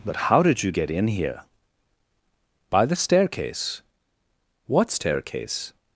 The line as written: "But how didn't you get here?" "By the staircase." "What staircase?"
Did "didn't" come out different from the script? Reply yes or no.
yes